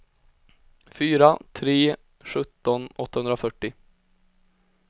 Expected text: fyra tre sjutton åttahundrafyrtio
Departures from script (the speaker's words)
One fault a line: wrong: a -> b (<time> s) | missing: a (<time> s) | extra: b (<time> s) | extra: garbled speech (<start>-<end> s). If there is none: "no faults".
no faults